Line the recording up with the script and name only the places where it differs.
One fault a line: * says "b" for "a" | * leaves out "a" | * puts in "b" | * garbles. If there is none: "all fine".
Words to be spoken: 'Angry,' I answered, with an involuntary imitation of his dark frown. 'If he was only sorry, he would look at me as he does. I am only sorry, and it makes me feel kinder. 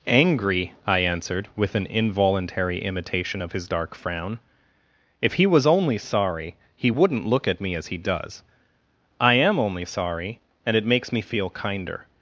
* says "wouldn't" for "would"